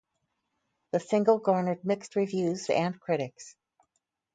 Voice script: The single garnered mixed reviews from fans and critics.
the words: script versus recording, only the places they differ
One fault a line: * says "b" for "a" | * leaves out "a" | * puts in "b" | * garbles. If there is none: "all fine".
* leaves out "from fans"